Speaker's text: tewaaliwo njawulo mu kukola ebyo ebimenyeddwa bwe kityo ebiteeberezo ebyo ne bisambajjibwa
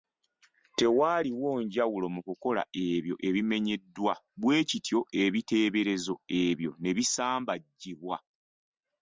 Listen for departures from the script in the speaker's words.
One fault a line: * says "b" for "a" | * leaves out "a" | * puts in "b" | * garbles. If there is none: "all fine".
all fine